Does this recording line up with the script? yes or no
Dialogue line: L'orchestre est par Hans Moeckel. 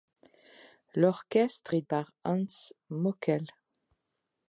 yes